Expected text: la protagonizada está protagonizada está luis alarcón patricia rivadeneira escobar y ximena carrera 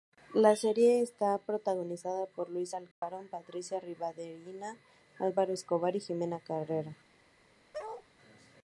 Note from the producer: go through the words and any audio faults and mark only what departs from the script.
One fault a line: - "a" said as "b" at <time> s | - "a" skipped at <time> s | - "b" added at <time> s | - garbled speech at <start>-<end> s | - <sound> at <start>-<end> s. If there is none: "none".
- "protagonizada" said as "serie" at 0.6 s
- "está" said as "por" at 2.2 s
- dropout at 2.9-3.0 s
- "álvaro" added at 5.2 s
- bark at 7.7-8.1 s